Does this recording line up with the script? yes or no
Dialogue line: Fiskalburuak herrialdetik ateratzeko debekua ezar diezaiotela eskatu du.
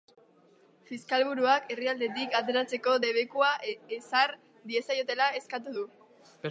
yes